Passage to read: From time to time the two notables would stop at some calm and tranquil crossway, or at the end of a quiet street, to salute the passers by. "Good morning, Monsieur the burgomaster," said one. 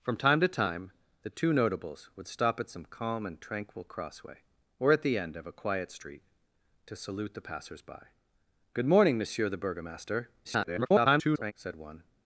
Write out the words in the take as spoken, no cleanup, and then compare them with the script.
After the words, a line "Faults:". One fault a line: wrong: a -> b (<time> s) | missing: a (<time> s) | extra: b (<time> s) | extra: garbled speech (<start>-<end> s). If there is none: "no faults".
From time to time the two notables would stop at some calm and tranquil crossway, or at the end of a quiet street, to salute the passers by. "Good morning, Monsieur the burgomaster," [garbled] said one.
Faults:
extra: garbled speech (10.4-11.5 s)